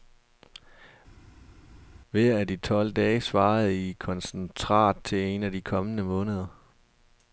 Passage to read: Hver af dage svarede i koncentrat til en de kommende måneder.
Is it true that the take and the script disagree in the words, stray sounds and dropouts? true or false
true